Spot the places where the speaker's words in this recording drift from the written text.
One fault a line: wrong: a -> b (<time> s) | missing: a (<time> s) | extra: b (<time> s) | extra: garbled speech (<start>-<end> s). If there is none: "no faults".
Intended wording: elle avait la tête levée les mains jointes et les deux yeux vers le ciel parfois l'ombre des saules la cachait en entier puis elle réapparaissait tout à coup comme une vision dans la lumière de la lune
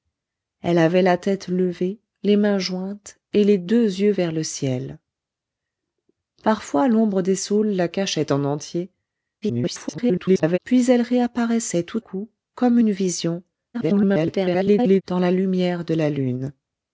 extra: garbled speech (9.4-10.6 s)
missing: à (12.0 s)
extra: garbled speech (13.7-15.0 s)